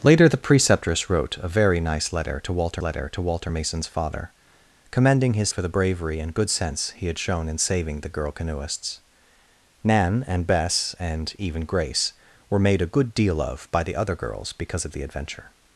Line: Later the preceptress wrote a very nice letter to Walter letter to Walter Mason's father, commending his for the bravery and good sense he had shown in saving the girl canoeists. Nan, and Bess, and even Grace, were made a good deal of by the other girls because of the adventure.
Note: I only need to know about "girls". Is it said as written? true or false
true